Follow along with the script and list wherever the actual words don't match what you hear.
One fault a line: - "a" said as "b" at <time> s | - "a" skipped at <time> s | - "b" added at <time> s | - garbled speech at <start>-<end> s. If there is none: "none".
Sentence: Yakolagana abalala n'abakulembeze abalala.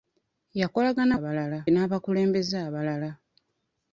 none